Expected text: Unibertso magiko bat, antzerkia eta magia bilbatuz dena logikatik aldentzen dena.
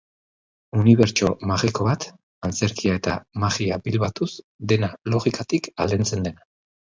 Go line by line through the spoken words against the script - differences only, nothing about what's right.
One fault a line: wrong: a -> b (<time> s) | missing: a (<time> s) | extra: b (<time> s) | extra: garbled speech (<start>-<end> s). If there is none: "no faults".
no faults